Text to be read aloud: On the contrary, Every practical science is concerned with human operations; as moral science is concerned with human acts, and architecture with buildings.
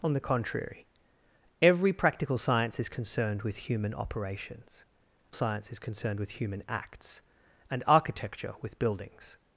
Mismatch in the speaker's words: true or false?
true